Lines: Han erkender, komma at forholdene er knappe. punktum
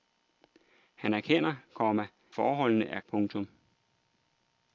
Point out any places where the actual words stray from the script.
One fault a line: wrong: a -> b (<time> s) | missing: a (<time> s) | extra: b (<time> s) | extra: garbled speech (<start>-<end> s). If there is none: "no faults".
missing: at (2.1 s)
missing: knappe (3.0 s)